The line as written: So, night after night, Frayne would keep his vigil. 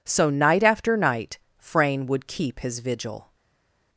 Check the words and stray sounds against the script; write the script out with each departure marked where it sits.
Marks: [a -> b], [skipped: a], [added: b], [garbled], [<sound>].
So, night after night, Frayne would keep his vigil.